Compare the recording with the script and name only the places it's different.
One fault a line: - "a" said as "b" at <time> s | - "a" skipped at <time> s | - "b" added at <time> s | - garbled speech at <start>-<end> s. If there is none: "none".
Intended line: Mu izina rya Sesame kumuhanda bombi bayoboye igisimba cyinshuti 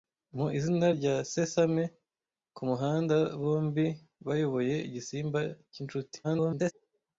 - garbled speech at 6.2-6.7 s